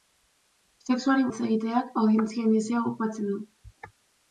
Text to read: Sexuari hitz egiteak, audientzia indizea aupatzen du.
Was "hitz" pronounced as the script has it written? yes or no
yes